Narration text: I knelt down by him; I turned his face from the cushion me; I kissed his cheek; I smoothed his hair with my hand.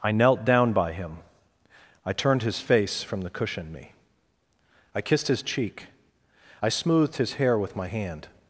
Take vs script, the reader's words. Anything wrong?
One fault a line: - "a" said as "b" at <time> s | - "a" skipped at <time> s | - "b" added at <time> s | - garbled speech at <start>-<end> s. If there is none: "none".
none